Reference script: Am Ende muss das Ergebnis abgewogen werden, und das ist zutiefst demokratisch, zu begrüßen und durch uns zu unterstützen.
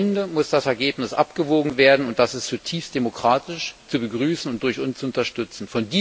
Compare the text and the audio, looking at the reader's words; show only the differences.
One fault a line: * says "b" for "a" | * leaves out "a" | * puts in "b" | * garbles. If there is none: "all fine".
all fine